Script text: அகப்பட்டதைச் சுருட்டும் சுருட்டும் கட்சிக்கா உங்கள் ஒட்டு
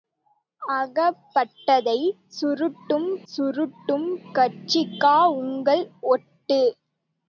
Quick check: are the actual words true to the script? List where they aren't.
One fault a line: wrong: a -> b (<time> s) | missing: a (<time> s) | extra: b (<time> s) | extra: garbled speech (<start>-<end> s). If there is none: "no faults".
no faults